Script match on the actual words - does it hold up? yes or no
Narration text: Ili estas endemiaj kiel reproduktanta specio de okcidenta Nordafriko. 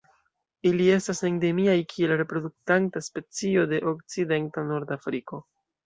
yes